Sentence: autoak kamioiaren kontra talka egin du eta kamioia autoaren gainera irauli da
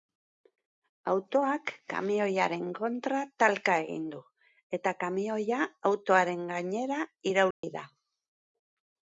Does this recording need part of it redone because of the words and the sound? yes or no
yes